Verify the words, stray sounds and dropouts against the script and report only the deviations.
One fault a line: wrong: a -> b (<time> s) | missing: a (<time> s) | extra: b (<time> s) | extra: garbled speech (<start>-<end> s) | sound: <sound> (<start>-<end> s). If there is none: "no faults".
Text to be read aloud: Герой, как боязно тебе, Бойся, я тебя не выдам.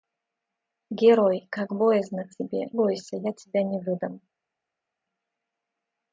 no faults